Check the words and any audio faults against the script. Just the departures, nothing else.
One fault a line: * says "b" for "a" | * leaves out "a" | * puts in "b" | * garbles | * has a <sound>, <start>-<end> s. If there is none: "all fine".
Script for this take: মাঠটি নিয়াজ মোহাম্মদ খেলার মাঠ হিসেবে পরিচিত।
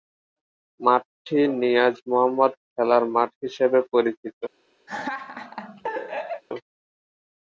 * has a laugh, 4.9-6.4 s